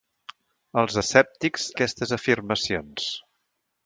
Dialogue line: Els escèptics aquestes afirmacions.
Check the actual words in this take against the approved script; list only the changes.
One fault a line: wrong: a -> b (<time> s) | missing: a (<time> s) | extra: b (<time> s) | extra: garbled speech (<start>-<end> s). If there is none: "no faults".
no faults